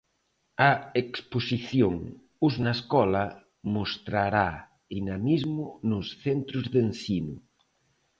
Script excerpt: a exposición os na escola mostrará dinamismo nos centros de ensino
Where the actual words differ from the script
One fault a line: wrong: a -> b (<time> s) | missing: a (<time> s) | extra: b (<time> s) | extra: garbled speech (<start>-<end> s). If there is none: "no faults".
no faults